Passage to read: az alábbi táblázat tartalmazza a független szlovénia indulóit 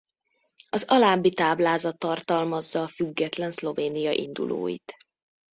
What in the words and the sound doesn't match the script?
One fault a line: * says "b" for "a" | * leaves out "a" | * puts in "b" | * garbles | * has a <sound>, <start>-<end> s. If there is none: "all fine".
all fine